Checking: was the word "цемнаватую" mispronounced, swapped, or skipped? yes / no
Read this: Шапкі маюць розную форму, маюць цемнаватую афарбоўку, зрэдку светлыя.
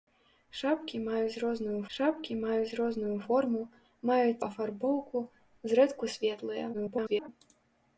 yes